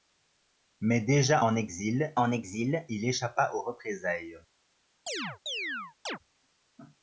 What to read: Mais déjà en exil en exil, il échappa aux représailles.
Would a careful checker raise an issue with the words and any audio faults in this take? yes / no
yes